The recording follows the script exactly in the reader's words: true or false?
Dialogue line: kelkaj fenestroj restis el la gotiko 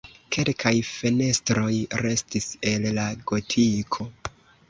true